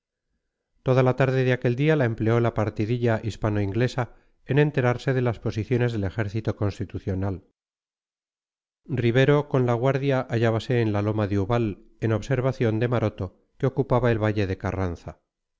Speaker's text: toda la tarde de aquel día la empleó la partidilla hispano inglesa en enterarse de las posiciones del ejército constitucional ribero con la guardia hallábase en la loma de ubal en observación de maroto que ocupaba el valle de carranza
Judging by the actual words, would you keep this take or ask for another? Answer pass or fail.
pass